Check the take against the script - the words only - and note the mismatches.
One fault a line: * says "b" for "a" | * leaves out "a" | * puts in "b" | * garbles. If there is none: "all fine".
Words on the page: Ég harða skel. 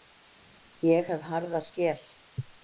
* puts in "hef"